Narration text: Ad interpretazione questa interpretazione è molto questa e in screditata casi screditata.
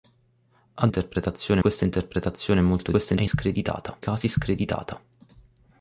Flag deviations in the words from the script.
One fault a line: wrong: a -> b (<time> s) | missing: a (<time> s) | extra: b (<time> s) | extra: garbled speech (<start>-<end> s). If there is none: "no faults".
no faults